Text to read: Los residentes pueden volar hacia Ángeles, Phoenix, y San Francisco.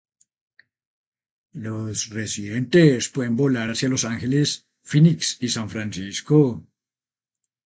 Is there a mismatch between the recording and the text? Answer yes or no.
yes